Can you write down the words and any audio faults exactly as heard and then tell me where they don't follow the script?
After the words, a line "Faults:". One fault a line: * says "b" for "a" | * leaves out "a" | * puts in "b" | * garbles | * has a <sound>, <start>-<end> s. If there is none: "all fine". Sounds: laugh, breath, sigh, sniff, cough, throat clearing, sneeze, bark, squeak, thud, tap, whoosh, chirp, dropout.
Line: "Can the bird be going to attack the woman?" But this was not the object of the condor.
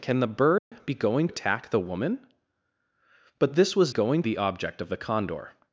"Can the bird be going attack the woman?" But this was going the object of the condor.
Faults:
* has a dropout, 0.6-0.7 s
* leaves out "to"
* says "going" for "not"